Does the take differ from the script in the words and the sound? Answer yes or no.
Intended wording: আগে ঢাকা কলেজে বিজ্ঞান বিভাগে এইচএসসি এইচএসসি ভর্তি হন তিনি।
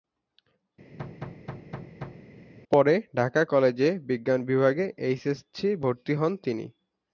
yes